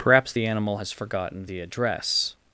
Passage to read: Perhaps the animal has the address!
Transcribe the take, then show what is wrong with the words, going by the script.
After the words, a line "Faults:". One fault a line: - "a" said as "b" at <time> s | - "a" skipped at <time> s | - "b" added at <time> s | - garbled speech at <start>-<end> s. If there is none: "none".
Perhaps the animal has forgotten the address!
Faults:
- "forgotten" added at 0.9 s